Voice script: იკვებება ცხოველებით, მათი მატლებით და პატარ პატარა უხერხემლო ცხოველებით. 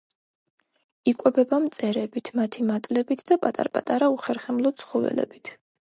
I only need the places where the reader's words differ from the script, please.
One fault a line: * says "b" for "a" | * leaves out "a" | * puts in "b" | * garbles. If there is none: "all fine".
* says "მწერებით" for "ცხოველებით"